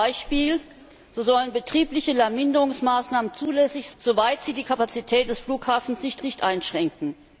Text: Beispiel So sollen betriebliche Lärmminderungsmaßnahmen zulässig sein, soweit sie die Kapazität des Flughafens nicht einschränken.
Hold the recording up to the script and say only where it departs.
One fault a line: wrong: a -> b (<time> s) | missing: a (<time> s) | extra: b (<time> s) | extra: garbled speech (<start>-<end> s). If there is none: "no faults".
missing: sein (3.9 s)
extra: nicht (6.2 s)